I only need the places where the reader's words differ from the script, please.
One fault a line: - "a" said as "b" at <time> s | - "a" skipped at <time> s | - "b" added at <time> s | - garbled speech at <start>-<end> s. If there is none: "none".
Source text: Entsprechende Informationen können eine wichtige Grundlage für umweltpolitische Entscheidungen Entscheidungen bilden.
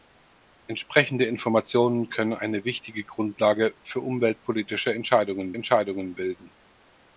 none